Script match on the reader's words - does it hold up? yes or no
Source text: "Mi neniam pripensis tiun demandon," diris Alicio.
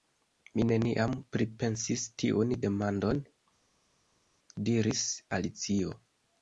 yes